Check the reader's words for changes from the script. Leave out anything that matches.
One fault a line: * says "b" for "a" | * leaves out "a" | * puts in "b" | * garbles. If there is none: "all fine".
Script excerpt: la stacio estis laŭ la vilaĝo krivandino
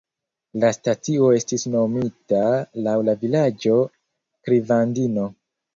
* puts in "nomita"